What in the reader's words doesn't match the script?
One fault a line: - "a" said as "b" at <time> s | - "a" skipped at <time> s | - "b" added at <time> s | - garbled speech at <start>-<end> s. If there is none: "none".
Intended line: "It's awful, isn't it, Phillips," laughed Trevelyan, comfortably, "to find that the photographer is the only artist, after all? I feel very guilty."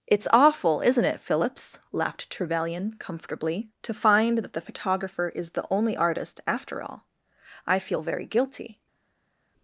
none